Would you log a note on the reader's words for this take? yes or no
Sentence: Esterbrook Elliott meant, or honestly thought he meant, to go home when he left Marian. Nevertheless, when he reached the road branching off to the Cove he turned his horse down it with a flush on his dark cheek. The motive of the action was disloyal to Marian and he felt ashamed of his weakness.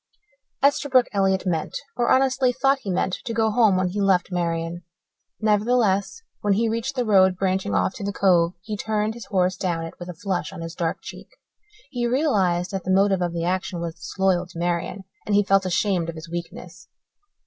yes